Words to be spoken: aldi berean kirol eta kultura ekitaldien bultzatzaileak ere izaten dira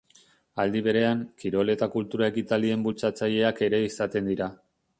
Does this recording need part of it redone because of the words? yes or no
no